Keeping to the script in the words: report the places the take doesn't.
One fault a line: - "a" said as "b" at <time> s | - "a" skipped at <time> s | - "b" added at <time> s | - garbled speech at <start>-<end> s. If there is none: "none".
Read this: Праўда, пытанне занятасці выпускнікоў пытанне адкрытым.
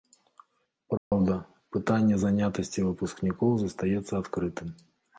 - "пытанне" said as "застаецца" at 3.7 s